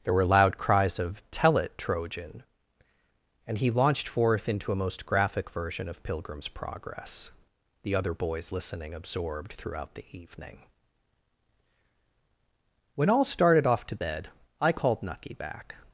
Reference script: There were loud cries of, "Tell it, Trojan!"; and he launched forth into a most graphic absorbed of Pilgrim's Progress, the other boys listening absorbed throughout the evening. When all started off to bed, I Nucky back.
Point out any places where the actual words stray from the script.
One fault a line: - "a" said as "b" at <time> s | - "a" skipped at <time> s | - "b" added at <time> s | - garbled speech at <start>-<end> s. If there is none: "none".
- "absorbed" said as "version" at 5.5 s
- "called" added at 14.7 s